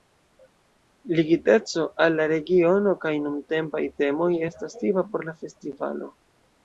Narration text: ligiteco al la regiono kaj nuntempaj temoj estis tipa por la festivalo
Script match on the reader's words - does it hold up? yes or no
no